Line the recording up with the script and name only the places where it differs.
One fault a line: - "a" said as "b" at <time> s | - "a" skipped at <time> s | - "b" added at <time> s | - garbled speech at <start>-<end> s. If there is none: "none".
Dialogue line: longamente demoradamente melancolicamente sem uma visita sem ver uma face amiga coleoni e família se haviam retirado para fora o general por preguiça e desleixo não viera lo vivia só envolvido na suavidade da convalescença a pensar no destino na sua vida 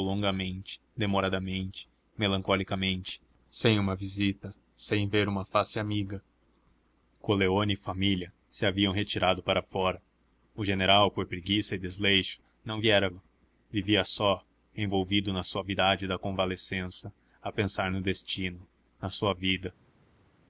none